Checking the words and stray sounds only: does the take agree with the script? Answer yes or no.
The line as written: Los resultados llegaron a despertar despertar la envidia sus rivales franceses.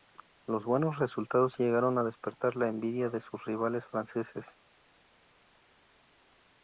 no